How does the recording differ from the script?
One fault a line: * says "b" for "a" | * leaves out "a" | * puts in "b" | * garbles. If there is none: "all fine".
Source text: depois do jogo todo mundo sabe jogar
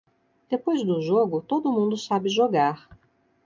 all fine